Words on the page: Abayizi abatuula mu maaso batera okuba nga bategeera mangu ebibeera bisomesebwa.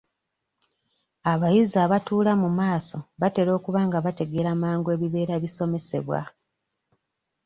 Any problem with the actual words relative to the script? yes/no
no